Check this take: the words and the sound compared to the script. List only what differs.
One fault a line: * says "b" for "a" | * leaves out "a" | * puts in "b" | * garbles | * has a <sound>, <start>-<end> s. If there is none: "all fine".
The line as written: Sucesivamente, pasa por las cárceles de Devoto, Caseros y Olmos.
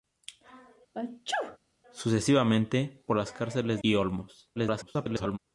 * has a sneeze, 0.9-1.6 s
* leaves out "pasa"
* leaves out "de Devoto Caseros"
* garbles